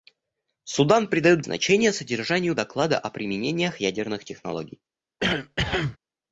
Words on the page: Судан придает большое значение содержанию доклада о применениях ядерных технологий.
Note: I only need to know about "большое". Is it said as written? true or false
false